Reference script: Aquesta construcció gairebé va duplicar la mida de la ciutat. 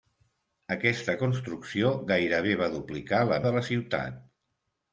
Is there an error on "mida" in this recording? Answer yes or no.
yes